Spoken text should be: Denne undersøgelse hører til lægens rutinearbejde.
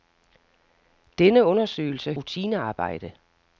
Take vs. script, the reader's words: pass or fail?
fail